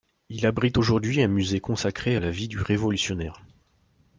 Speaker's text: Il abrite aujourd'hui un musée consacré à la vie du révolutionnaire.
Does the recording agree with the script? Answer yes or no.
yes